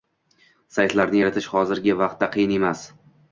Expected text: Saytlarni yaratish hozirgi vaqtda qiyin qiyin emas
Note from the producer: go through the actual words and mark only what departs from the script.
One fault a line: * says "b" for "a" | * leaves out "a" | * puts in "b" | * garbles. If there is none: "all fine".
* leaves out "qiyin"